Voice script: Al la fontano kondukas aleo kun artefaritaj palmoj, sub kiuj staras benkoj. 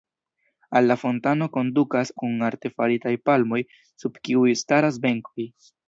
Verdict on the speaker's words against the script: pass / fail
fail